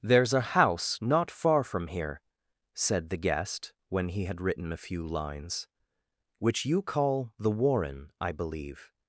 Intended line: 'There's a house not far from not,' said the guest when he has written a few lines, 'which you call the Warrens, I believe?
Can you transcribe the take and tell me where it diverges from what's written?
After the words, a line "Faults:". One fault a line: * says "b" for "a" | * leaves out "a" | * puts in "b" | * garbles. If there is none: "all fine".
'There's a house not far from here,' said the guest when he had written a few lines, 'which you call the Warren, I believe?
Faults:
* says "here" for "not"
* says "had" for "has"
* says "Warren" for "Warrens"